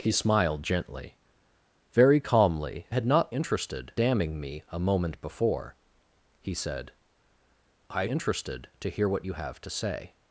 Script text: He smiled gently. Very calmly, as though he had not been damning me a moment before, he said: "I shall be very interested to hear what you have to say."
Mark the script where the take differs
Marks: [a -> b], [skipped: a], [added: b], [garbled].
He smiled gently. Very calmly, [skipped: as though he] had not [been -> interested] damning me a moment before, he said: "I [skipped: shall be very] interested to hear what you have to say."